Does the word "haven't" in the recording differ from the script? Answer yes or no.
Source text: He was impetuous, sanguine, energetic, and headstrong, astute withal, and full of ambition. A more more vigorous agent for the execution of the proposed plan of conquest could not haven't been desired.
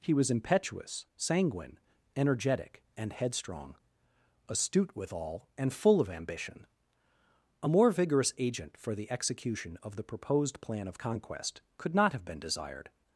yes